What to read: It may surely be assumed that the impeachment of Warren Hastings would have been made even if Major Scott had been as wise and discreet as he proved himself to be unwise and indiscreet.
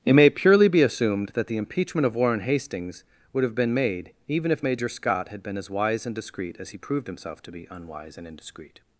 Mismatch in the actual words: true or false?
true